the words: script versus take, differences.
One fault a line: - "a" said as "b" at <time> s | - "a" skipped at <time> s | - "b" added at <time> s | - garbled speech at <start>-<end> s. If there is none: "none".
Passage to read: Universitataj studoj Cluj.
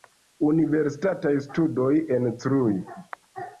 - "en" added at 2.2 s